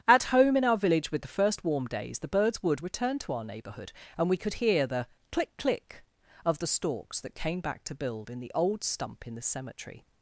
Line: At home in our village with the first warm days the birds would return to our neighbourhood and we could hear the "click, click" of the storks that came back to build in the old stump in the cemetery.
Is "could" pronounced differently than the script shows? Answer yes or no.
no